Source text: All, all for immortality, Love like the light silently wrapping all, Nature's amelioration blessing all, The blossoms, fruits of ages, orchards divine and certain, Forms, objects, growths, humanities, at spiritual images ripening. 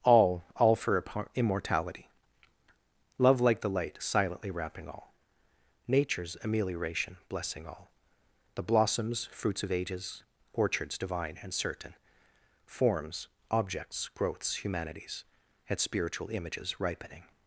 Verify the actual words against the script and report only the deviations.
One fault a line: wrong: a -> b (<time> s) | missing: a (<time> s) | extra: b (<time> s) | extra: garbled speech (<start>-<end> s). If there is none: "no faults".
no faults